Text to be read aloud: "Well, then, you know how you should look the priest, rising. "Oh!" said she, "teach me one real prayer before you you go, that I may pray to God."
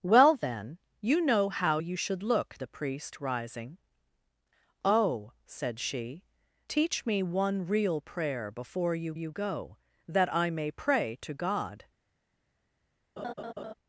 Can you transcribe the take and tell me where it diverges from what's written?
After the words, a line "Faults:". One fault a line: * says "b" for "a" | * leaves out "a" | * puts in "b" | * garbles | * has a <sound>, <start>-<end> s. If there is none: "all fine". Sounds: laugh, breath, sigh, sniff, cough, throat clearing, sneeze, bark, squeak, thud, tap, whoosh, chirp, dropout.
"Well, then, you know how you should look the priest, rising. "Oh!" said she, "teach me one real prayer before you you go, that I may pray to God."
Faults:
* has a laugh, 13.2-13.7 s